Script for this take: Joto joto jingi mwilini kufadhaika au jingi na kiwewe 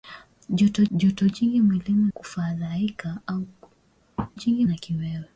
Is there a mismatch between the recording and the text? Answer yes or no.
no